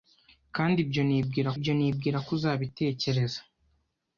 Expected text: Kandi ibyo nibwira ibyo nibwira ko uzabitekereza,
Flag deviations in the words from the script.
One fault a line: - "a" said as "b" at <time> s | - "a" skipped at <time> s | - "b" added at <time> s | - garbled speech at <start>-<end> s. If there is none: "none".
none